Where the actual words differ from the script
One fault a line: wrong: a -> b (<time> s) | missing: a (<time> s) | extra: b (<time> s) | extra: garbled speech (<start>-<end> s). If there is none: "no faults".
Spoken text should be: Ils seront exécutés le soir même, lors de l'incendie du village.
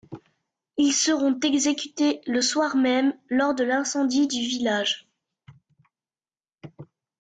no faults